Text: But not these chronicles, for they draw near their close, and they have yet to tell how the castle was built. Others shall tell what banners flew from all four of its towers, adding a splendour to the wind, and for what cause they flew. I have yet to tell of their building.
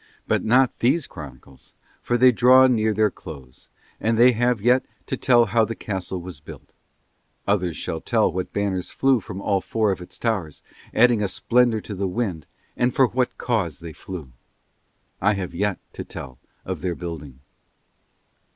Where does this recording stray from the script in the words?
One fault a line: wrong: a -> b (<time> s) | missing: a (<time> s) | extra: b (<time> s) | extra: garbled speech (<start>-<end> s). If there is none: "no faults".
no faults